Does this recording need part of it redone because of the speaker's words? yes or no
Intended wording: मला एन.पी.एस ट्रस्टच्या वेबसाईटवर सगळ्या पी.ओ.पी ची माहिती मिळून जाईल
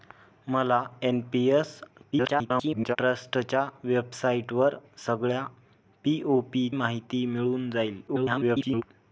yes